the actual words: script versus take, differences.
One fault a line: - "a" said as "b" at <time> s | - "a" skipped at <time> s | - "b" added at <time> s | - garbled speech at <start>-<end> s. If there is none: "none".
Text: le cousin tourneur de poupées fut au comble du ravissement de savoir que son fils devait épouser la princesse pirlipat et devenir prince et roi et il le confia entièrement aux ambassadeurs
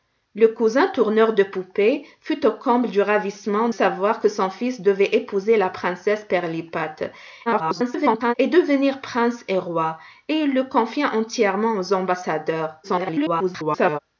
- "de" skipped at 3.7 s
- garbled speech at 7.5-8.3 s
- garbled speech at 12.8-14.0 s